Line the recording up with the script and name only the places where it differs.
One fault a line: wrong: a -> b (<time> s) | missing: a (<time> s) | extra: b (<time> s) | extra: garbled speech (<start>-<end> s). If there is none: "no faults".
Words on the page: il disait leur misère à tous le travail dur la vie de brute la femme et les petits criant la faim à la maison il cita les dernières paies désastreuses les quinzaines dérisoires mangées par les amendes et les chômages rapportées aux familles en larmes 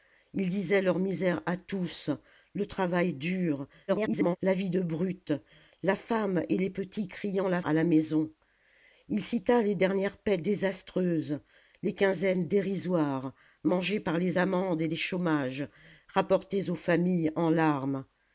extra: garbled speech (3.9-4.4 s)
missing: faim (7.6 s)